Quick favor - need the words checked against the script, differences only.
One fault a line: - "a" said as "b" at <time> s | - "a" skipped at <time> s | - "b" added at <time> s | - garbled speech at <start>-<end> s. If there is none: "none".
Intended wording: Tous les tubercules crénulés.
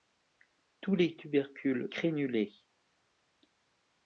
none